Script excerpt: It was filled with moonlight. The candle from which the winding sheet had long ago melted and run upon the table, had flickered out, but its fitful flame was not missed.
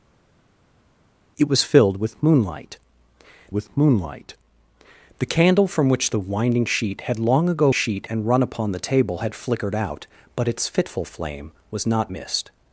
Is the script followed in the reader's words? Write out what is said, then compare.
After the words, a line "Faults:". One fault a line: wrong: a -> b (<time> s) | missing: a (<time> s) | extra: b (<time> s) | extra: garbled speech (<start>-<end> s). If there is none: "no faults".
It was filled with moonlight with moonlight. The candle from which the winding sheet had long ago sheet and run upon the table, had flickered out, but its fitful flame was not missed.
Faults:
extra: with moonlight (3.5 s)
wrong: melted -> sheet (7.7 s)